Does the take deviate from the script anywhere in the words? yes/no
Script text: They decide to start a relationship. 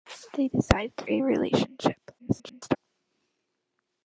yes